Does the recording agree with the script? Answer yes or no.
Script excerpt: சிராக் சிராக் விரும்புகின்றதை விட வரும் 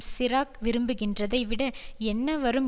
no